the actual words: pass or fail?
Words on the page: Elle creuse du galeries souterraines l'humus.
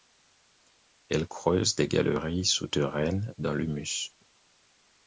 fail